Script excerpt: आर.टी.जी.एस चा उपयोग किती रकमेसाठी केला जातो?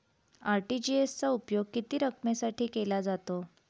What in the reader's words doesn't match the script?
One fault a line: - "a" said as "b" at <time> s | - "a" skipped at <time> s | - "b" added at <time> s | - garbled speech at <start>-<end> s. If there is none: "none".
none